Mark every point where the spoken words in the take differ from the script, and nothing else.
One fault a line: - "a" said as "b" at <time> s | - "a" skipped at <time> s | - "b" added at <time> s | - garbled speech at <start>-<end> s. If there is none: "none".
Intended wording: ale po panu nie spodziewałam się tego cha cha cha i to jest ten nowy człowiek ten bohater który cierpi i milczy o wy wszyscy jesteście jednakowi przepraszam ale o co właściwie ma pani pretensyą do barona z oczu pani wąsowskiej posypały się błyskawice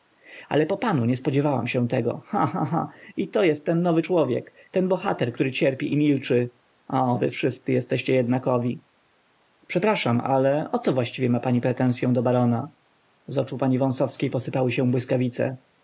none